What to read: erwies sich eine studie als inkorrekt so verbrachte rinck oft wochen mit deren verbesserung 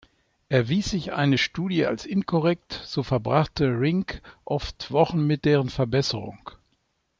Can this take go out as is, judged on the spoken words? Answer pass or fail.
pass